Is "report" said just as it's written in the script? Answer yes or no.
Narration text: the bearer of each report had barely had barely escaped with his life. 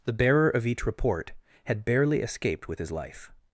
yes